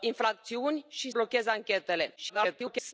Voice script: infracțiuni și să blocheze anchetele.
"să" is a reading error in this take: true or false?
true